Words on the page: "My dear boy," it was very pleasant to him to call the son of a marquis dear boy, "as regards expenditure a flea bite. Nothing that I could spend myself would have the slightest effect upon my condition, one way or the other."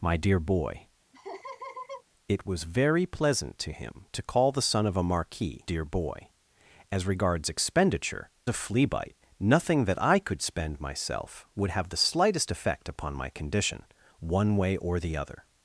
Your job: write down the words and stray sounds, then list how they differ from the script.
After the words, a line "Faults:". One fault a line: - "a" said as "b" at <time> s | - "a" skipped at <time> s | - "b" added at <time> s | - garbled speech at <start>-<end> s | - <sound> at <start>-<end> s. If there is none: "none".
"My dear boy," it was very pleasant to him to call the son of a marquis dear boy, "as regards expenditure a flea bite. Nothing that I could spend myself would have the slightest effect upon my condition, one way or the other."
Faults:
- laugh at 1.1-2.0 s